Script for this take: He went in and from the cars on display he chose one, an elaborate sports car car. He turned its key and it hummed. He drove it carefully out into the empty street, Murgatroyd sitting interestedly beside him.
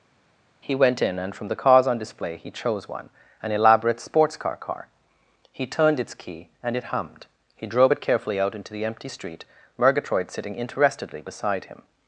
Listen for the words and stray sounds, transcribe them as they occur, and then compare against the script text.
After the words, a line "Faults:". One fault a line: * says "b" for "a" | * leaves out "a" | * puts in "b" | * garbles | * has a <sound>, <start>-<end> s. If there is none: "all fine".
He went in and from the cars on display he chose one, an elaborate sports car car. He turned its key and it hummed. He drove it carefully out into the empty street, Murgatroyd sitting interestedly beside him.
Faults:
all fine